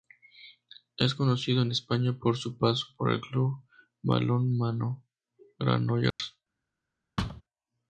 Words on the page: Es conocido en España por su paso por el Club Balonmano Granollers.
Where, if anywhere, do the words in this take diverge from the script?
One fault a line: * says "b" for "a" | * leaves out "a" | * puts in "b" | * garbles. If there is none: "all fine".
all fine